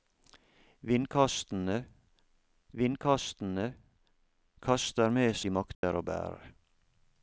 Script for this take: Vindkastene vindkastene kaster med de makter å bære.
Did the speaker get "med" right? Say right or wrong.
right